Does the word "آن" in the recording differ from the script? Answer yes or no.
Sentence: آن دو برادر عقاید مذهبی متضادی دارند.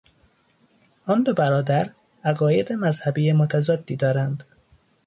no